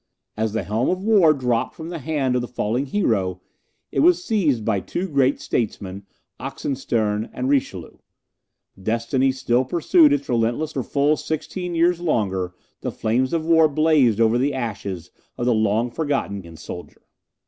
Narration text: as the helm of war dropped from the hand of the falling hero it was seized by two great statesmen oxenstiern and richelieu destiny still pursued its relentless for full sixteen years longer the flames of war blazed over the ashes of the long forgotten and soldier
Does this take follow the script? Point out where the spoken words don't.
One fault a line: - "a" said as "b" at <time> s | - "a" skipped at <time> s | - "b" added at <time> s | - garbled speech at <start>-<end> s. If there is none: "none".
none